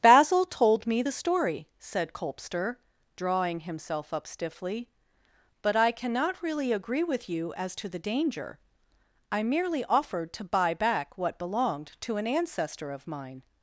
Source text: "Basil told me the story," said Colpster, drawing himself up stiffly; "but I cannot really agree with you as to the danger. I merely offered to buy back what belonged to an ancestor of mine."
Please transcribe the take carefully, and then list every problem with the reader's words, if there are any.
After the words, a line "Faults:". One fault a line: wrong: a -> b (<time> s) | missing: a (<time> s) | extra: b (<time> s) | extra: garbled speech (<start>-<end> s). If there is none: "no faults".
"Basil told me the story," said Colpster, drawing himself up stiffly; "but I cannot really agree with you as to the danger. I merely offered to buy back what belonged to an ancestor of mine."
Faults:
no faults